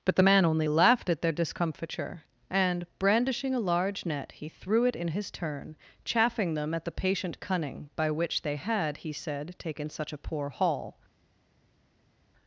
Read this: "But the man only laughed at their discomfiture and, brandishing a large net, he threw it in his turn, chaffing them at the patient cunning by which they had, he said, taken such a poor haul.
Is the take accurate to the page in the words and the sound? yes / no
yes